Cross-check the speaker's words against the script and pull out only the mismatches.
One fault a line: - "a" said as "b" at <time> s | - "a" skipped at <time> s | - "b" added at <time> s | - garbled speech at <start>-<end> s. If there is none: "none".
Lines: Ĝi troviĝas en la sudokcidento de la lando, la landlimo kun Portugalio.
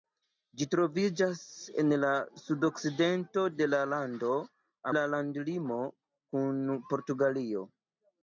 none